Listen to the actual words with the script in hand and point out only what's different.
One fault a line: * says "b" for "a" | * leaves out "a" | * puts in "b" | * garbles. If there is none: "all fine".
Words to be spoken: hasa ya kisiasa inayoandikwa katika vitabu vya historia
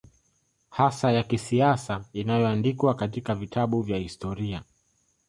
all fine